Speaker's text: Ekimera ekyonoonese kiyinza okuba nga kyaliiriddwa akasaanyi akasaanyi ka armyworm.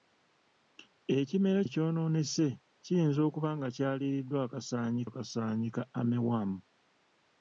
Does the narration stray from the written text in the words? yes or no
no